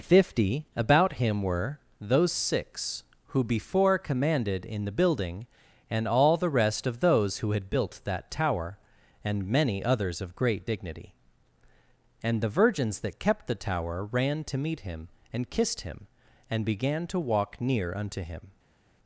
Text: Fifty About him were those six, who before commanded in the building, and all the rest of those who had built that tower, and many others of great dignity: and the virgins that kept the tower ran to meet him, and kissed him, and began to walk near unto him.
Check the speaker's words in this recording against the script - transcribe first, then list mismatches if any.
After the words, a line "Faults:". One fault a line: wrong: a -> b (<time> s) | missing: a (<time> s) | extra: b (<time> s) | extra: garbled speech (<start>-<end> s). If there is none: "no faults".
Fifty About him were those six, who before commanded in the building, and all the rest of those who had built that tower, and many others of great dignity: and the virgins that kept the tower ran to meet him, and kissed him, and began to walk near unto him.
Faults:
no faults